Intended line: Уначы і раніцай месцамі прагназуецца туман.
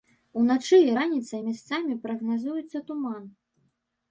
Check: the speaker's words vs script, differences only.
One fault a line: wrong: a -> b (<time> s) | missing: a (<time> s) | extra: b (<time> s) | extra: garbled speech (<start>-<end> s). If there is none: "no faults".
no faults